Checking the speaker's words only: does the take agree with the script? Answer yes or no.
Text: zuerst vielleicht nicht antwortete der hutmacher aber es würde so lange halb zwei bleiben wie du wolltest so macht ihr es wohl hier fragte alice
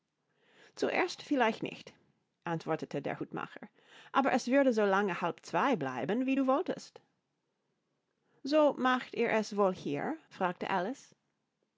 yes